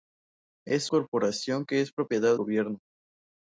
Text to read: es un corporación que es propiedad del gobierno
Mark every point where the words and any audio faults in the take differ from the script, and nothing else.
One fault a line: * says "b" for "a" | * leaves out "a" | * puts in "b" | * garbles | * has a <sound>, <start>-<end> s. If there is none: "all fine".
* leaves out "un"
* leaves out "del"